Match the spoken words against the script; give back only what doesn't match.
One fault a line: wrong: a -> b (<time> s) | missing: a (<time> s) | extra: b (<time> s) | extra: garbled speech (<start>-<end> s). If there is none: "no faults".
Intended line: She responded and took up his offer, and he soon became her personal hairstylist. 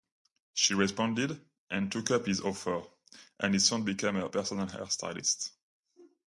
no faults